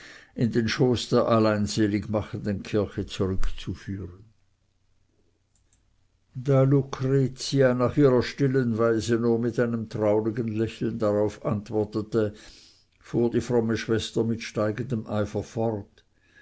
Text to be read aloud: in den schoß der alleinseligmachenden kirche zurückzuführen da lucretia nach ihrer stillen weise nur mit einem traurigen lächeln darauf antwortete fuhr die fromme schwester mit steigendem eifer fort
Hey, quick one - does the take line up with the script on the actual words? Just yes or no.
yes